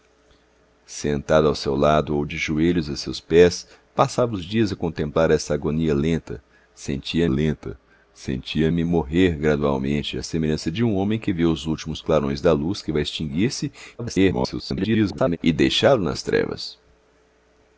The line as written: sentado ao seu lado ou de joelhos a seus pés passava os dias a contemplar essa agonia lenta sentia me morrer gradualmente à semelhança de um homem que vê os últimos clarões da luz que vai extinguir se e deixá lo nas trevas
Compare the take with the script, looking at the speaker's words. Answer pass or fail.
fail